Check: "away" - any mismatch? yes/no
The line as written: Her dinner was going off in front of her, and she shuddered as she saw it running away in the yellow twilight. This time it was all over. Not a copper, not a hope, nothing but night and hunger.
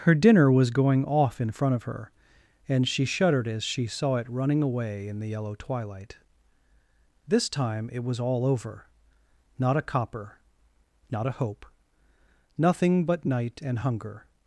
no